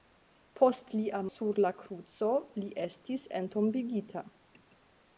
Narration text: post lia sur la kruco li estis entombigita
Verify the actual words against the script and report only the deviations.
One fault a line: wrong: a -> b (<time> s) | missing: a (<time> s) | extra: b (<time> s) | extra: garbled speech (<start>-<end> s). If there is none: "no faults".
no faults